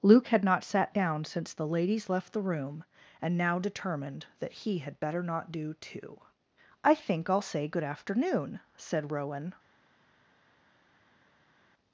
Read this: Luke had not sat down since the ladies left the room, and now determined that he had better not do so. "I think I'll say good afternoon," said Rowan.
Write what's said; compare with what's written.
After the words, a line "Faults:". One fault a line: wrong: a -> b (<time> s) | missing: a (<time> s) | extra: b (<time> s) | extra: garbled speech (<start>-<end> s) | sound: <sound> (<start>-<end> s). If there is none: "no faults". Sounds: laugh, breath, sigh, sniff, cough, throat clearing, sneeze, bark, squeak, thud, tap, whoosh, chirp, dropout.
Luke had not sat down since the ladies left the room, and now determined that he had better not do too. "I think I'll say good afternoon," said Rowan.
Faults:
wrong: so -> too (5.8 s)